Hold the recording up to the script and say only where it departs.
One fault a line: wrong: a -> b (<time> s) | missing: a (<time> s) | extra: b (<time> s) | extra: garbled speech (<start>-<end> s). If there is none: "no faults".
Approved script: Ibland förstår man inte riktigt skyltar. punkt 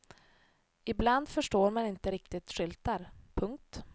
no faults